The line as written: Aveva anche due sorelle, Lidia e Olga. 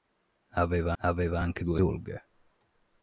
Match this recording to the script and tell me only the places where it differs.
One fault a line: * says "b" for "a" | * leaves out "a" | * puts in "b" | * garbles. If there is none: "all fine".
* puts in "aveva"
* leaves out "sorelle Lidia e"